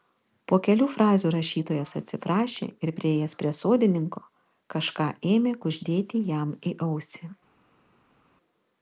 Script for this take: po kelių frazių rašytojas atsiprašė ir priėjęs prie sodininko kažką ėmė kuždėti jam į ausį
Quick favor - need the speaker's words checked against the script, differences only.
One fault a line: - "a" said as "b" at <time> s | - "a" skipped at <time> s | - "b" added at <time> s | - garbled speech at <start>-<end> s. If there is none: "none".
none